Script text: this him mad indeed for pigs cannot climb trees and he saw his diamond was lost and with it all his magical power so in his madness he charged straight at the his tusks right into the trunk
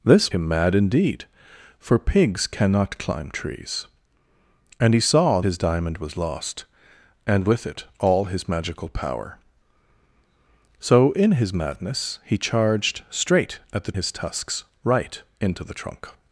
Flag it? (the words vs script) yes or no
no